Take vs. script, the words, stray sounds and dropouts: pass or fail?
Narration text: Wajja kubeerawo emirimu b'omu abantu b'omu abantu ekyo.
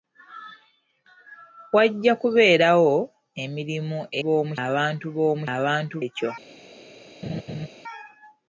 fail